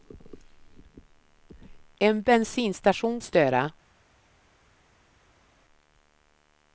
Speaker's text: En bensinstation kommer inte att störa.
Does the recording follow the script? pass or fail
fail